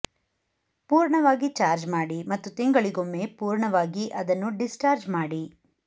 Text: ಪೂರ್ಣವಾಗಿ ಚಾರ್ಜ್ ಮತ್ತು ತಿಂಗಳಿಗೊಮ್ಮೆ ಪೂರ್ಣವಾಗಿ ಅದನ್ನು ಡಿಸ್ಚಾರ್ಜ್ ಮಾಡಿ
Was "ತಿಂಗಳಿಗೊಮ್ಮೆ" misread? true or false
false